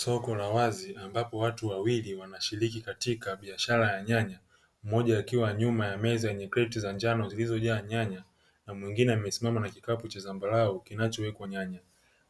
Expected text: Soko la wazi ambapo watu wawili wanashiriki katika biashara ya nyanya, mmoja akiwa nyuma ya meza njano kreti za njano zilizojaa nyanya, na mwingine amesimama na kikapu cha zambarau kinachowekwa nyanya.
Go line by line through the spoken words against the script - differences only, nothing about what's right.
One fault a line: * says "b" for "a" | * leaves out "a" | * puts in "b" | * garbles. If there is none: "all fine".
* says "yenye" for "njano"